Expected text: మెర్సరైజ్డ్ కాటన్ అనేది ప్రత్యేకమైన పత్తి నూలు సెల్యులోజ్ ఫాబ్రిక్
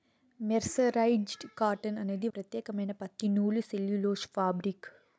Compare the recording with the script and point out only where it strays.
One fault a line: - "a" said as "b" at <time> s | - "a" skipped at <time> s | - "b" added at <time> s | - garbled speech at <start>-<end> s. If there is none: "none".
none